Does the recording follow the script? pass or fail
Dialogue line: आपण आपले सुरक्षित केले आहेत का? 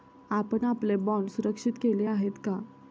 fail